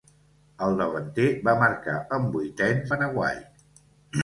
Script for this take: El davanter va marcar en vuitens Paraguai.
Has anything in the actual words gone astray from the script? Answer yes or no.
no